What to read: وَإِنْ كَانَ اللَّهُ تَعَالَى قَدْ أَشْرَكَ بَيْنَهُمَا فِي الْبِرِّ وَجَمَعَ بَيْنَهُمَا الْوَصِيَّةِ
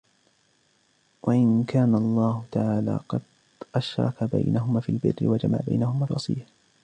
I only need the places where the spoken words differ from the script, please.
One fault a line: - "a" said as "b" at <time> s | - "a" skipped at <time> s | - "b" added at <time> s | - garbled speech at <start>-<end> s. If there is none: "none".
none